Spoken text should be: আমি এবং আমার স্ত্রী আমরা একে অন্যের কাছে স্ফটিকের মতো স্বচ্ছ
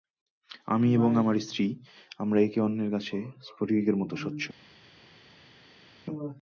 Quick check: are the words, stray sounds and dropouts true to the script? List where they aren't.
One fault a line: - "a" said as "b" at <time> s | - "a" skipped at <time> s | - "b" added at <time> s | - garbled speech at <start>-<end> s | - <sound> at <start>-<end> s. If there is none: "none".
none